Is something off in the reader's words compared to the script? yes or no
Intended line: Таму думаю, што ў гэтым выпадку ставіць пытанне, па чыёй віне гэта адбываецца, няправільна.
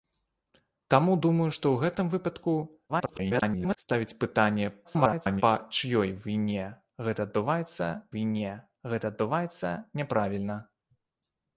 yes